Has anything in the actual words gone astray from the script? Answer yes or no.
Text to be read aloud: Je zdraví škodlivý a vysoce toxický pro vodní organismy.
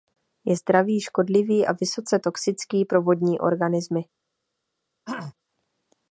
no